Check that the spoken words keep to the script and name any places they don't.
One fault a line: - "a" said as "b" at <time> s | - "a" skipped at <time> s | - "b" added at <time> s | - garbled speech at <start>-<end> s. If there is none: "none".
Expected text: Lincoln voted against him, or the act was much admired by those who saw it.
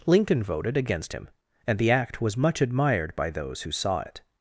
- "or" said as "and" at 1.7 s